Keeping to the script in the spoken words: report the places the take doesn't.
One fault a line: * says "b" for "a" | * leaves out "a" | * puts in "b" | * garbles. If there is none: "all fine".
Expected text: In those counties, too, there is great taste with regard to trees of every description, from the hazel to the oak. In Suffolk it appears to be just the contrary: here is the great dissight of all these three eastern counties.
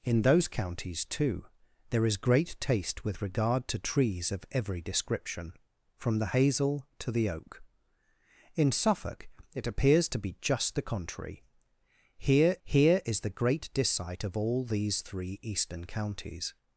* puts in "here"